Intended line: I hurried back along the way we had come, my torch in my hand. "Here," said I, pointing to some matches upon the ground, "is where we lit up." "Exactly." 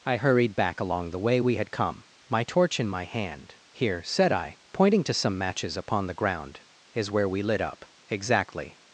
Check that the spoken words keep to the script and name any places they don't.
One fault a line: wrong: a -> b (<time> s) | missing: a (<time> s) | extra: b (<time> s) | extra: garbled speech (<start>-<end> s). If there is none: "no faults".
no faults